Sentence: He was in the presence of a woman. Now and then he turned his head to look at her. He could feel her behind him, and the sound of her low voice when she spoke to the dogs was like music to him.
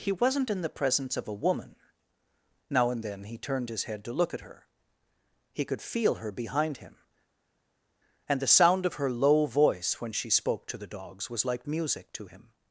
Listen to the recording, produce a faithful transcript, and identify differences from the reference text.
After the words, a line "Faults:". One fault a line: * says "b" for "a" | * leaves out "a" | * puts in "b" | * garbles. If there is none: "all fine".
He wasn't in the presence of a woman. Now and then he turned his head to look at her. He could feel her behind him, and the sound of her low voice when she spoke to the dogs was like music to him.
Faults:
* says "wasn't" for "was"